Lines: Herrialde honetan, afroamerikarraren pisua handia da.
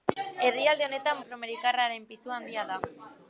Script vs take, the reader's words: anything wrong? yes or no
no